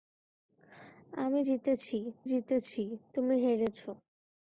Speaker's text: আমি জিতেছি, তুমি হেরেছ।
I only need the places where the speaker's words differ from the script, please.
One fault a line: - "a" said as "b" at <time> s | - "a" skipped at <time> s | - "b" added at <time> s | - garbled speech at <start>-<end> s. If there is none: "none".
- "জিতেছি" added at 2.2 s